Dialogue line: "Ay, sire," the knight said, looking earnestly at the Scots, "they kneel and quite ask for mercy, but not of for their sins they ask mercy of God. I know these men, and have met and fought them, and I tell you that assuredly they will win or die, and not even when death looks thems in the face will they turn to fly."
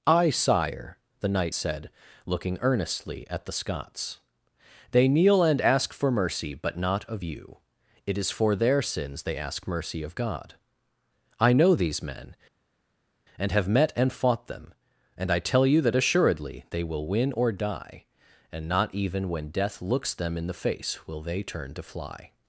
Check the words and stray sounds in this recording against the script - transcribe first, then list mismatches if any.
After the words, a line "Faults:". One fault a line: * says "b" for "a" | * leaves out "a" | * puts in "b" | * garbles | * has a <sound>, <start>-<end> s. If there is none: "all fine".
"Ay, sire," the knight said, looking earnestly at the Scots, "they kneel and ask for mercy, but not of you; it is for their sins they ask mercy of God. I know these men, and have met and fought them, and I tell you that assuredly they will win or die, and not even when death looks them in the face will they turn to fly."
Faults:
* leaves out "quite"
* puts in "you it is"
* says "them" for "thems"